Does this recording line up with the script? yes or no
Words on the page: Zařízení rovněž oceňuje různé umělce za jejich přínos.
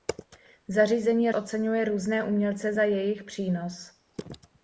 no